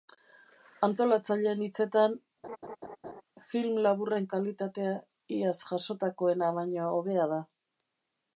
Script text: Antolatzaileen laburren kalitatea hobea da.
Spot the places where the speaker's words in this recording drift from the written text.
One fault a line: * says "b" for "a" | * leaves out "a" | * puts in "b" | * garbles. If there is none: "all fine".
* puts in "hitzetan film"
* puts in "iaz jasotakoena baino"